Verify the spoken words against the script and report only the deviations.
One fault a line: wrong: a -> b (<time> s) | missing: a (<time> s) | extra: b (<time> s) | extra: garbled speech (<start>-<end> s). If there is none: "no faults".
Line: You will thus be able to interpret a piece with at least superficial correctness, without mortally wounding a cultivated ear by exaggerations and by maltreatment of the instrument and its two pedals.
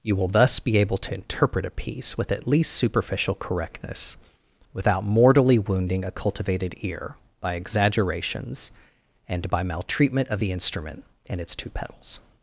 no faults